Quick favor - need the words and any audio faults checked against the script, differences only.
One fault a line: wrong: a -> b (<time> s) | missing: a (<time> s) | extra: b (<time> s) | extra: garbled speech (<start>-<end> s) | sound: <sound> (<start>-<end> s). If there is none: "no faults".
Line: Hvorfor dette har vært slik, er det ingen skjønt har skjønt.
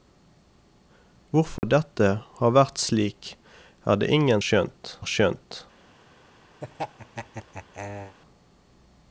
sound: dropout (1.6-1.6 s)
sound: laugh (6.6-8.2 s)